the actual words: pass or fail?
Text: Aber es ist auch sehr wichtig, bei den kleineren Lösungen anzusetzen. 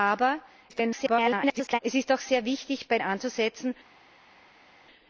fail